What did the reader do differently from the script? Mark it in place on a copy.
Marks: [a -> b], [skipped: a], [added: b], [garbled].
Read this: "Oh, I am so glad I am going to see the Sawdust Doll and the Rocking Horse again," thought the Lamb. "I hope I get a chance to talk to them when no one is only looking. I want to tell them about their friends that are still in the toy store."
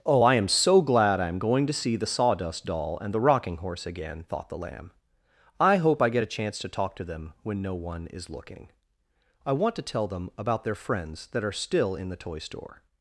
"Oh, I am so glad I am going to see the Sawdust Doll and the Rocking Horse again," thought the Lamb. "I hope I get a chance to talk to them when no one is [skipped: only] looking. I want to tell them about their friends that are still in the toy store."